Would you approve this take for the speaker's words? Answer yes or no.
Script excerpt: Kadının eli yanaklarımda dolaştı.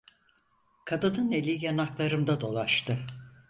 yes